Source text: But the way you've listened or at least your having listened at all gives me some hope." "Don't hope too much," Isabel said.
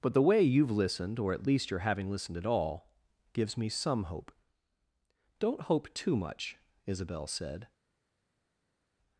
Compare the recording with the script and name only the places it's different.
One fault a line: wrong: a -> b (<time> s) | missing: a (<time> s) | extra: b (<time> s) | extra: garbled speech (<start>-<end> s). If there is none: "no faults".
no faults